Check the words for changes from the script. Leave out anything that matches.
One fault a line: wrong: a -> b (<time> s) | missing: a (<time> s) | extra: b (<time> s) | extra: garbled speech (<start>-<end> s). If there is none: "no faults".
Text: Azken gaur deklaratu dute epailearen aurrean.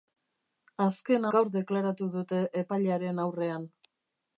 no faults